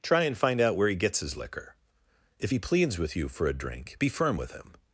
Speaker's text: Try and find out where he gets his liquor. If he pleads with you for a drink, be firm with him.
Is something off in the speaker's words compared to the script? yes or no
no